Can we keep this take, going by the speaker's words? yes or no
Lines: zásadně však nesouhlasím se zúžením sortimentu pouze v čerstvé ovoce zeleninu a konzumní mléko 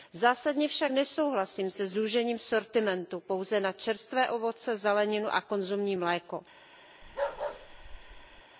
no